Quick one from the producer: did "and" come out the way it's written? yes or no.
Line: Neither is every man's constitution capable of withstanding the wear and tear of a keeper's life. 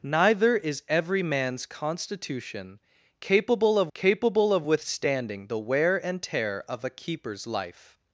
yes